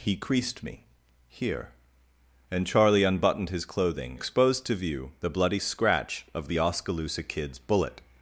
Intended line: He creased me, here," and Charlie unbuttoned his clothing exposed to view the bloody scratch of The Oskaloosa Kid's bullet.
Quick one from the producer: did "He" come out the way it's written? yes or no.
yes